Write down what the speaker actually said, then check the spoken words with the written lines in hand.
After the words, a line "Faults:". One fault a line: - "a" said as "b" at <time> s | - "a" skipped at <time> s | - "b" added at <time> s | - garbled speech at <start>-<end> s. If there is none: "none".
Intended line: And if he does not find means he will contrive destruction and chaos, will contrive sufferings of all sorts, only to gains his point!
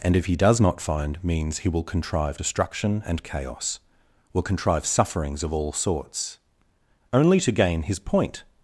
And if he does not find means he will contrive destruction and chaos, will contrive sufferings of all sorts, only to gain his point!
Faults:
- "gains" said as "gain" at 7.5 s